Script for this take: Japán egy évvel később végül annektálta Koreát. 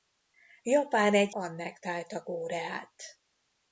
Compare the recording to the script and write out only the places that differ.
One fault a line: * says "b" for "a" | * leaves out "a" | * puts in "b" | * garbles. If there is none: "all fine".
* leaves out "évvel később végül"